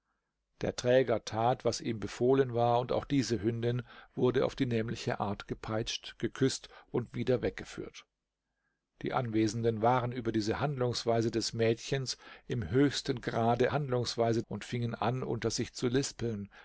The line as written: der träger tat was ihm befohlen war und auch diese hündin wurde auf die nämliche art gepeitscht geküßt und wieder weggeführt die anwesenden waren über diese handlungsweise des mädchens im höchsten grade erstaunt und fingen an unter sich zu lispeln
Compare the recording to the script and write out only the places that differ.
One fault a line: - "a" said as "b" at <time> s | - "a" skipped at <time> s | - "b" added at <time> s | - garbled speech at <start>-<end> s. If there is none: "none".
- "erstaunt" said as "handlungsweise" at 13.7 s